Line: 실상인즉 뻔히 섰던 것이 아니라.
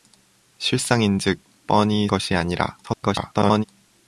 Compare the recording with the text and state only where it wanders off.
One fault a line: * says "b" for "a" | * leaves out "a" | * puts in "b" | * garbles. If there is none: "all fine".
* leaves out "섰던"
* garbles